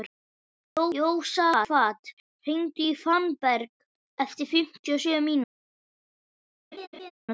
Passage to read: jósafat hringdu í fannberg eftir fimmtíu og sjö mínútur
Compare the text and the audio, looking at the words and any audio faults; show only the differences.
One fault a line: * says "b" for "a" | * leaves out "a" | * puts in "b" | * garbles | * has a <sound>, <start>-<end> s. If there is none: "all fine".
* has a laugh, 6.7-7.1 s